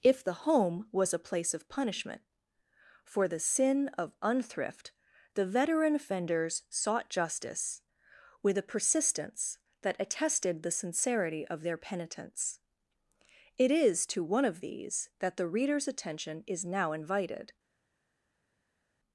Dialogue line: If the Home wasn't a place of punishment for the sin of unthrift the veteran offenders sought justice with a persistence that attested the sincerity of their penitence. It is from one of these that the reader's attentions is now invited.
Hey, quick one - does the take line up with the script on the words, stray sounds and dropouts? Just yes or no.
no